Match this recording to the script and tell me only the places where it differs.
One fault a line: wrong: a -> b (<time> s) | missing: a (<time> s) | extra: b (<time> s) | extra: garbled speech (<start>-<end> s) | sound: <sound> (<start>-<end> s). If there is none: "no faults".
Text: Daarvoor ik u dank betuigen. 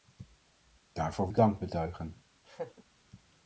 sound: laugh (2.4-2.8 s)